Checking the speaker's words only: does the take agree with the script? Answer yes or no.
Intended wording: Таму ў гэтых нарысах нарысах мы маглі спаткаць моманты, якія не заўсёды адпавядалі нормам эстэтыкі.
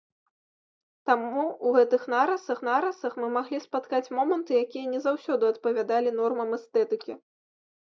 yes